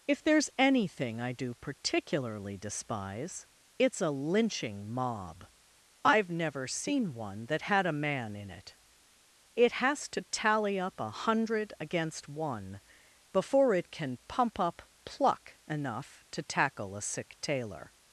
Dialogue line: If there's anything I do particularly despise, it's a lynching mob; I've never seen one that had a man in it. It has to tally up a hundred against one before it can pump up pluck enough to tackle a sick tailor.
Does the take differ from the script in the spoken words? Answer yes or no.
no